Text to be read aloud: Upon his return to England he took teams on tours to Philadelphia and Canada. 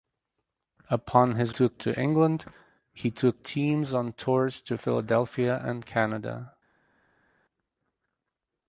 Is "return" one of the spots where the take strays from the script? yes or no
yes